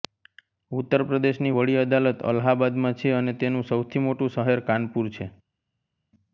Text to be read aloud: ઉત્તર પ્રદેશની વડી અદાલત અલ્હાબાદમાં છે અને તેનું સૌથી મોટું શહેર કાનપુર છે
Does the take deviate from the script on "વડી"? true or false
false